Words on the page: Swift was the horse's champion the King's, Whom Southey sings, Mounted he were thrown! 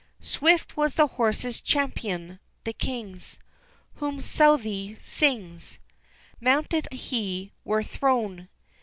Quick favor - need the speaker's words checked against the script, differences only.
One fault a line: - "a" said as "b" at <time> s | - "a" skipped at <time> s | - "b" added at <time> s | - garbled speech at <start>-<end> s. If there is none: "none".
none